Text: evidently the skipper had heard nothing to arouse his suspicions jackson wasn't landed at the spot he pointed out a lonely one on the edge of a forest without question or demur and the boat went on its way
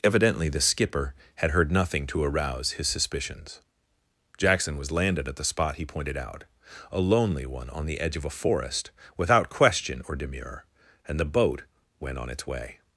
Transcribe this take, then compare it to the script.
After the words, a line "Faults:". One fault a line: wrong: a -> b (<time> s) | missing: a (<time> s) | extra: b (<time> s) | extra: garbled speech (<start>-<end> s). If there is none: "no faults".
evidently the skipper had heard nothing to arouse his suspicions jackson was landed at the spot he pointed out a lonely one on the edge of a forest without question or demur and the boat went on its way
Faults:
wrong: wasn't -> was (4.8 s)